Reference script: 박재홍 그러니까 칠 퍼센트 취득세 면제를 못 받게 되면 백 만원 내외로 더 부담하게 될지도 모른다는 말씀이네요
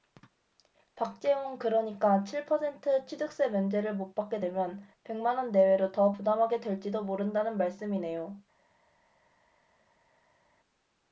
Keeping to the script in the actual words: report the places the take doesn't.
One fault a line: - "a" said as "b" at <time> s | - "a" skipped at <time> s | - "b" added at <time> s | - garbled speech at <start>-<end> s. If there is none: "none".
none